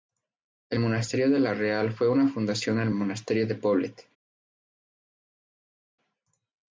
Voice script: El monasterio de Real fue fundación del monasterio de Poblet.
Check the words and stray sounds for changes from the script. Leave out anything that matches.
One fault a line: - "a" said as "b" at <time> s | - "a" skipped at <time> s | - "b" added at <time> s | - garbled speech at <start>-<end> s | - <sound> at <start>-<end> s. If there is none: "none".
- "la" added at 1.4 s
- "una" added at 2.1 s